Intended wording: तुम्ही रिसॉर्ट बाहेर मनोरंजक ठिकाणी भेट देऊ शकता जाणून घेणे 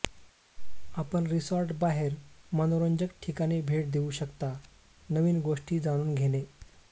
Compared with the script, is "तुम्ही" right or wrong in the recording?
wrong